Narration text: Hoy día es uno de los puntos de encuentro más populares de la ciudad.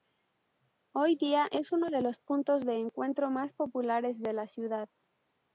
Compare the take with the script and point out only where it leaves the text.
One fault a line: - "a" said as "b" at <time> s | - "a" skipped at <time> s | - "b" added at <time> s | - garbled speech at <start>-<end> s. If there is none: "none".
none